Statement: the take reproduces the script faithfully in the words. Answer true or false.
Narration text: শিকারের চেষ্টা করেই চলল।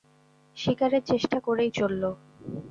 true